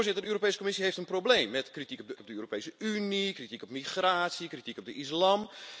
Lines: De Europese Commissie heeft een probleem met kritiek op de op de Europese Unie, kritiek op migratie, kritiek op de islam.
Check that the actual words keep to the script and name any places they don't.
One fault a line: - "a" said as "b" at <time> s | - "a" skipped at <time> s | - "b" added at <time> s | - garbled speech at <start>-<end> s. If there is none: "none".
none